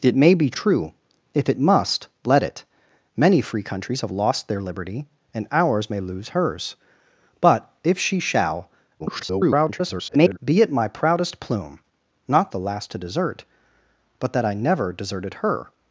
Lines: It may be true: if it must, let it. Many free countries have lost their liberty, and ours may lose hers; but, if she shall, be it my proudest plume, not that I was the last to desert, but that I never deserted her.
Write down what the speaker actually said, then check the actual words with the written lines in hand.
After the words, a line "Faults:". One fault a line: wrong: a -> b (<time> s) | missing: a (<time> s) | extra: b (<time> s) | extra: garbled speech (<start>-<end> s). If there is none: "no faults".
It may be true: if it must, let it. Many free countries have lost their liberty, and ours may lose hers; but, if she shall, [garbled] be it my proudest plume, not the last to desert, but that I never deserted her.
Faults:
extra: garbled speech (9.0-10.4 s)
missing: that I was (12.5 s)